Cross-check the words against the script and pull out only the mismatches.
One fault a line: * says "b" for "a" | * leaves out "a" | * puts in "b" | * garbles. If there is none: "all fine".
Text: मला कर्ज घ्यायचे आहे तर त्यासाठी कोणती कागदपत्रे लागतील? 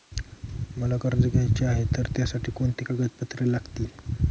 all fine